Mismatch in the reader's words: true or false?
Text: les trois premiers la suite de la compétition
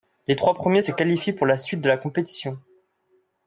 true